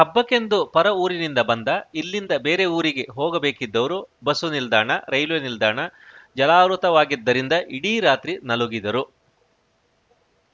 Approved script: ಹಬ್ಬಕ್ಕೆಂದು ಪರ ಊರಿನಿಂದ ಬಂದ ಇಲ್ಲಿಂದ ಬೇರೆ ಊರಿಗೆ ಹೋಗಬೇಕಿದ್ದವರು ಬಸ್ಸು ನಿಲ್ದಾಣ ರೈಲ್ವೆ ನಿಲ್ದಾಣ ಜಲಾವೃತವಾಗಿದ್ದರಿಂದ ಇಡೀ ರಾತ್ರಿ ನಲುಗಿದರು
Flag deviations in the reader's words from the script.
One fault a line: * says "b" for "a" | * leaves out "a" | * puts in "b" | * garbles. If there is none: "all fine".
all fine